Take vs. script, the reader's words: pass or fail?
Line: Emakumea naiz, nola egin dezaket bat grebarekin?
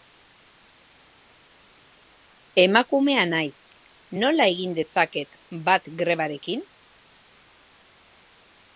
pass